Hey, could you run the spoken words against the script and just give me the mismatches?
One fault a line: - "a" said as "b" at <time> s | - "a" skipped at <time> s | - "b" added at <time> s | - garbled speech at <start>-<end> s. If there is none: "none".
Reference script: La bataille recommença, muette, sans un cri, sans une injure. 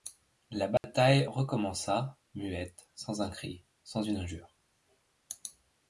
none